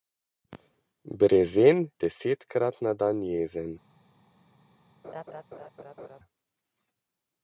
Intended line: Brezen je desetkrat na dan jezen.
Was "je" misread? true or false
true